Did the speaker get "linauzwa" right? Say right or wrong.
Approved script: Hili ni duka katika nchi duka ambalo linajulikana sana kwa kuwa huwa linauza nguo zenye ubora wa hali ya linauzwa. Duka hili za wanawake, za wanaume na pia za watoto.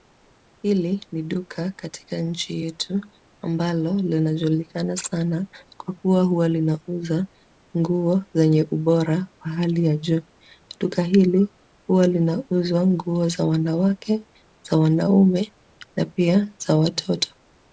wrong